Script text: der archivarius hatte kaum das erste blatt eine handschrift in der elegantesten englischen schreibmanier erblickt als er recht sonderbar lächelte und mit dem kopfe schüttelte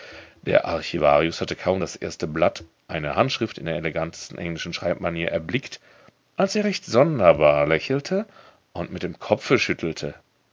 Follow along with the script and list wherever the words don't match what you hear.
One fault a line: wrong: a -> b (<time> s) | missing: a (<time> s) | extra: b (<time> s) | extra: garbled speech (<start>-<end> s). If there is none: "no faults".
no faults